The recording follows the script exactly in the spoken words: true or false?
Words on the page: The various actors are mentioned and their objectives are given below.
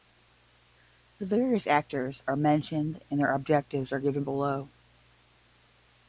true